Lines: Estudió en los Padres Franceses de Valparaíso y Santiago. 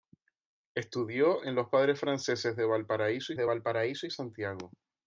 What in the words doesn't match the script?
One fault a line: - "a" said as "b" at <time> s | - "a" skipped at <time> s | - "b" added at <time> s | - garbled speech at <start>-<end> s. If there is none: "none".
- "de Valparaíso" added at 3.4 s